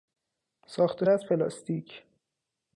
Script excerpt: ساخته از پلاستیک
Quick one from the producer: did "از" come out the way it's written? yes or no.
yes